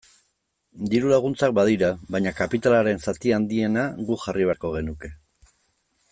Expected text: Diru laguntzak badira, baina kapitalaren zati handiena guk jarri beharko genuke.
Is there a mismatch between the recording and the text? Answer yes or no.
no